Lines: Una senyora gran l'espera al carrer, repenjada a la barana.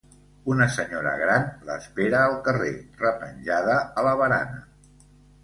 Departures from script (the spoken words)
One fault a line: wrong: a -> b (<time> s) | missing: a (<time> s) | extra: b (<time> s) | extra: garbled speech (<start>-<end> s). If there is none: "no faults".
no faults